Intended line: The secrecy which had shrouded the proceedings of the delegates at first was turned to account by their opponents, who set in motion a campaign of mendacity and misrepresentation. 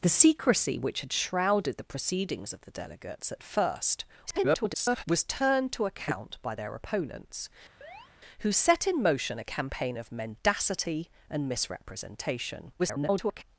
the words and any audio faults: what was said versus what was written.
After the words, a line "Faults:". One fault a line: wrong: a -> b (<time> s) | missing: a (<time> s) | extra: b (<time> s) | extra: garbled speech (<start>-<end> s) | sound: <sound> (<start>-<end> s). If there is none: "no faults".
The secrecy which had shrouded the proceedings of the delegates at first [garbled] was turned to account by their opponents, who set in motion a campaign of mendacity and misrepresentation. [garbled]
Faults:
extra: garbled speech (4.3-5.0 s)
sound: chirp (7.8-8.1 s)
extra: garbled speech (12.8-13.4 s)